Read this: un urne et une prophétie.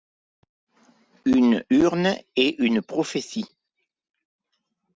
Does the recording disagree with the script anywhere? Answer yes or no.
yes